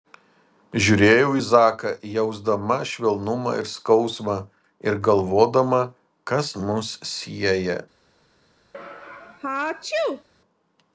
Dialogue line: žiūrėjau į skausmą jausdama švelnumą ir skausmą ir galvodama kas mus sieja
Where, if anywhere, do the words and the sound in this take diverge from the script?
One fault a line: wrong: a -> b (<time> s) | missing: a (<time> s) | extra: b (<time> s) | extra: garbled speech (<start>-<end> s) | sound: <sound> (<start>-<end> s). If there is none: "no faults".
wrong: skausmą -> zaką (1.5 s)
sound: sneeze (8.7-10.3 s)